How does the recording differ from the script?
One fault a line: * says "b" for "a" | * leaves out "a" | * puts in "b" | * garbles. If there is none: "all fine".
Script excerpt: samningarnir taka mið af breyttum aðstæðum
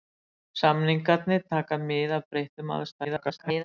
* garbles